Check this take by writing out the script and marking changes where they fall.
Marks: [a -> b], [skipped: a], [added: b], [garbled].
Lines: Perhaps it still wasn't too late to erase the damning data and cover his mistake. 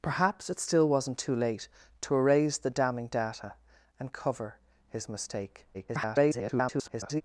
Perhaps it still wasn't too late to erase the damning data and cover his mistake. [garbled]